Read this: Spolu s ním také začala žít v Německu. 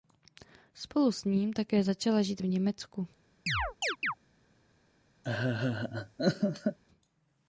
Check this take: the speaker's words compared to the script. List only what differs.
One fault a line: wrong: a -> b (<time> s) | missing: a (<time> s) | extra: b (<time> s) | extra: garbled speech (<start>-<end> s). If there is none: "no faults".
no faults